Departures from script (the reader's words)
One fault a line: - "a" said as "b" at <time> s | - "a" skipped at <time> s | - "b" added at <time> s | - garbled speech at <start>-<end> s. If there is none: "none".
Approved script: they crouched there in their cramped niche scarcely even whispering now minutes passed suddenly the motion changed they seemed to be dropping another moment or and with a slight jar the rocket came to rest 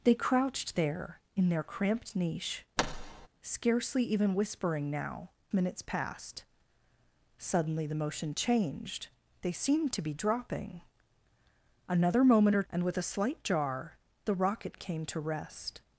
none